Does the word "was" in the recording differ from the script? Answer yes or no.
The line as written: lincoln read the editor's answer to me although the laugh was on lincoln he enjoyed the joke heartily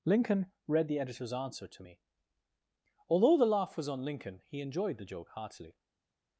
no